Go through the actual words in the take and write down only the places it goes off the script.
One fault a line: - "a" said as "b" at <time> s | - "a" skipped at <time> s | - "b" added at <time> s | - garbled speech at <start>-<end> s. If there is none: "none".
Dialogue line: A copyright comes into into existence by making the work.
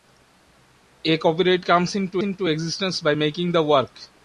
none